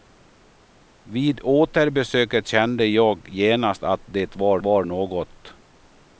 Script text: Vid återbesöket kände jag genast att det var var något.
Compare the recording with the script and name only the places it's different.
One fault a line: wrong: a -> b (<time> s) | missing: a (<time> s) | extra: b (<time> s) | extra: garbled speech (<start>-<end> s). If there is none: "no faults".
no faults